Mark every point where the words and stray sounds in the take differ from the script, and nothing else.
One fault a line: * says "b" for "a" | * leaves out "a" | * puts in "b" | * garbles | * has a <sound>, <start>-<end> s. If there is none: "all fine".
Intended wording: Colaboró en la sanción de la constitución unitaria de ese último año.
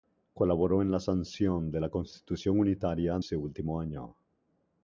* leaves out "de"